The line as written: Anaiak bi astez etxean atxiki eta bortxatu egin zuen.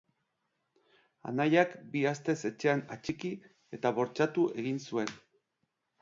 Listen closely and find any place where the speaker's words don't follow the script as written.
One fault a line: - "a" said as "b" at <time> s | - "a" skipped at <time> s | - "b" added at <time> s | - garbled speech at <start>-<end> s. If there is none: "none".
none